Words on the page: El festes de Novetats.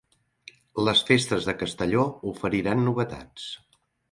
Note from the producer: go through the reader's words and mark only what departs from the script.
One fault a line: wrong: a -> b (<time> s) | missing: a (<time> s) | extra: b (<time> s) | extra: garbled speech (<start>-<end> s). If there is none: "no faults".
wrong: El -> Les (0.9 s)
extra: Castelló oferiran (1.6 s)